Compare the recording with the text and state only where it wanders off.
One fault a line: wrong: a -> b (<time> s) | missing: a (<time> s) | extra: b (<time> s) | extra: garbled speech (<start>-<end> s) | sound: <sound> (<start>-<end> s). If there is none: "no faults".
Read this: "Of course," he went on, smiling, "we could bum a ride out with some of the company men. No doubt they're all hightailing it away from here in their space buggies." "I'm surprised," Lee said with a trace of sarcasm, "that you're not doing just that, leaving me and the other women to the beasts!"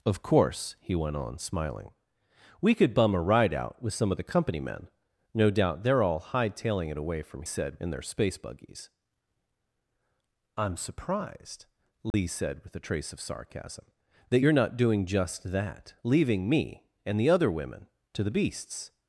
wrong: here -> said (7.4 s)
sound: dropout (12.1-12.1 s)